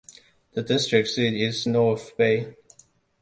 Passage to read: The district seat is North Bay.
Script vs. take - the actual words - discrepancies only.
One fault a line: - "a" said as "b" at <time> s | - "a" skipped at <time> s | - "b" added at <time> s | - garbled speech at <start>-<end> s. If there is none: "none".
none